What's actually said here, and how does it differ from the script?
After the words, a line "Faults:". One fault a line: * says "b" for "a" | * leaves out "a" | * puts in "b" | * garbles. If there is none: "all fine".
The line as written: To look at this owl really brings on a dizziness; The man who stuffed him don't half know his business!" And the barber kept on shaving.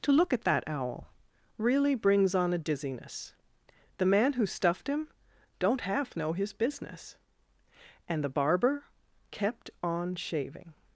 To look at that owl really brings on a dizziness; The man who stuffed him don't half know his business!" And the barber kept on shaving.
Faults:
* says "that" for "this"